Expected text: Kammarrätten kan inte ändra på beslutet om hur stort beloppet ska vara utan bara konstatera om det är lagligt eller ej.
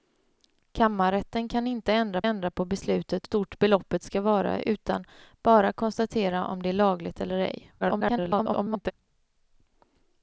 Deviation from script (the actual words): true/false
true